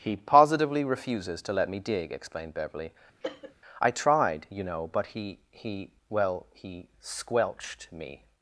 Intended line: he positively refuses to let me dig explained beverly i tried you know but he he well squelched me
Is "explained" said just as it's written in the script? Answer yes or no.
yes